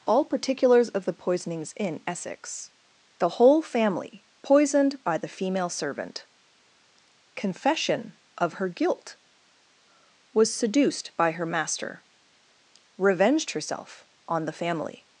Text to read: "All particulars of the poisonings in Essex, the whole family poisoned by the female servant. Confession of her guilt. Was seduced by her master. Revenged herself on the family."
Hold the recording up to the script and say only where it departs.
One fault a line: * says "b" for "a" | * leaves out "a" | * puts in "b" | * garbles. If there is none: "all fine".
all fine